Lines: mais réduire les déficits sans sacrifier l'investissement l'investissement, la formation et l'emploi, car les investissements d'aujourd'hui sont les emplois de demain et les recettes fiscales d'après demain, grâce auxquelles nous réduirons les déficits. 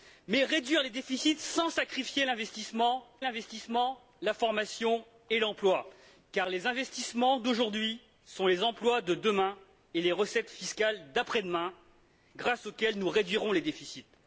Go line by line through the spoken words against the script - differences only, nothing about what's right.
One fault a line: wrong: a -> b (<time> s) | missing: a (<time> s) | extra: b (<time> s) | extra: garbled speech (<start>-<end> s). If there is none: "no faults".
no faults